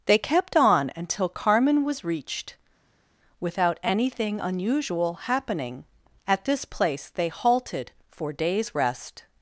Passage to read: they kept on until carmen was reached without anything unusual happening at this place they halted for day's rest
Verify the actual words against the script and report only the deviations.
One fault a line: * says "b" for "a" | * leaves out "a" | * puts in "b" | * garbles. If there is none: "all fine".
all fine